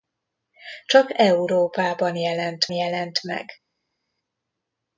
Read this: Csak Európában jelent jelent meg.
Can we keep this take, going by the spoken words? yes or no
yes